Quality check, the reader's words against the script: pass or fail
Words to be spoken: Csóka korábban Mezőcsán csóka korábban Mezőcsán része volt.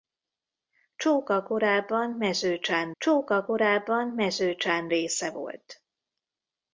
pass